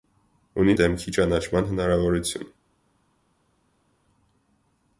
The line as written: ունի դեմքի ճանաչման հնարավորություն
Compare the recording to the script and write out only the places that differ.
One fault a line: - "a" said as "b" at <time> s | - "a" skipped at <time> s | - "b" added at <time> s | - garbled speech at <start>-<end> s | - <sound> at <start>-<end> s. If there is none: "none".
none